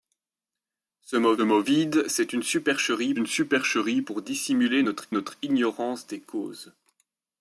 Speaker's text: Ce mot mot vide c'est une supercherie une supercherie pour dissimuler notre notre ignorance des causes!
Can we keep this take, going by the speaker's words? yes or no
yes